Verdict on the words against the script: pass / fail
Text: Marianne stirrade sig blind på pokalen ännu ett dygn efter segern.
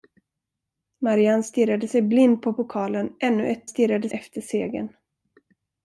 fail